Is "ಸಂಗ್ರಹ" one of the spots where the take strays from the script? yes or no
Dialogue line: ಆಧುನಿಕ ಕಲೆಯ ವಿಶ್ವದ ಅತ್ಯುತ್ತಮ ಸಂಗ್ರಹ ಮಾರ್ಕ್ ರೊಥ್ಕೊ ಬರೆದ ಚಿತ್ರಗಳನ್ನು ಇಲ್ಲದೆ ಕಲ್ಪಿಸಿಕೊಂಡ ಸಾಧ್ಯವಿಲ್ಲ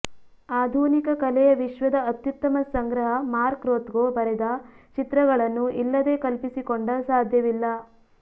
no